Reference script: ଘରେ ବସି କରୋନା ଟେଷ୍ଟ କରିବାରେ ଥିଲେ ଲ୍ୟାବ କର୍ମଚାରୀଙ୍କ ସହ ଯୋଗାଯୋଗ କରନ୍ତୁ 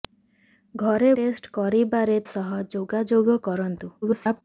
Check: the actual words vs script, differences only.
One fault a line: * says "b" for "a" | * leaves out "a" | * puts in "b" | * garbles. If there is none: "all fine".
* leaves out "ବସି କରୋନା"
* leaves out "ଥିଲେ ଲ୍ୟାବ କର୍ମଚାରୀଙ୍କ"
* garbles